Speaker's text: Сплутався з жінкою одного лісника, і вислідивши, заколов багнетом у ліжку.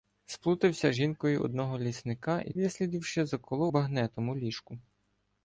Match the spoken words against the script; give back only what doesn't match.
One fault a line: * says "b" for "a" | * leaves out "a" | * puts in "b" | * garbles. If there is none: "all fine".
all fine